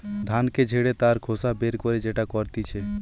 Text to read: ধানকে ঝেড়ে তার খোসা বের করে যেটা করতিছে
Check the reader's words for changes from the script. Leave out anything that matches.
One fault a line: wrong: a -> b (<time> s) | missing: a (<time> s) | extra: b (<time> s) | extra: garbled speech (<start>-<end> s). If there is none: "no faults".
no faults